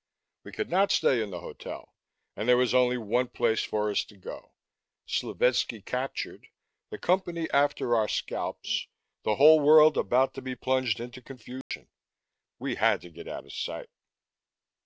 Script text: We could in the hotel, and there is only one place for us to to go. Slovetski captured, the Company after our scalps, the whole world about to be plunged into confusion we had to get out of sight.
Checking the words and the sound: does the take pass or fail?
fail